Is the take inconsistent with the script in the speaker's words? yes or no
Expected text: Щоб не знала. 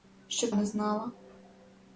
no